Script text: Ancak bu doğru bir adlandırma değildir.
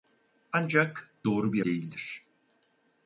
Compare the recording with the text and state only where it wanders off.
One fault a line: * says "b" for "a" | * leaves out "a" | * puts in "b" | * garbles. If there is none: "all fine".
* leaves out "bu"
* leaves out "adlandırma"